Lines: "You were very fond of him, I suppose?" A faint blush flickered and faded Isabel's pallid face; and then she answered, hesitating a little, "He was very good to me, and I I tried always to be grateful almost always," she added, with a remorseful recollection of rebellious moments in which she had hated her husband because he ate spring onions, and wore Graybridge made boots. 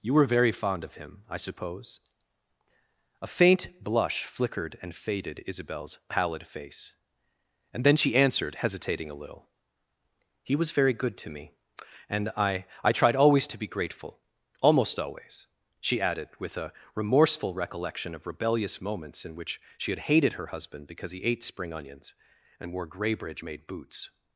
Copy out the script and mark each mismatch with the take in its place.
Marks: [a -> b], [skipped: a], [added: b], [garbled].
"You were very fond of him, I suppose?" A faint blush flickered and faded Isabel's pallid face; and then she answered, hesitating a little, "He was very good to me, and I I tried always to be grateful almost always," she added, with a remorseful recollection of rebellious moments in which she had hated her husband because he ate spring onions, and wore Graybridge made boots.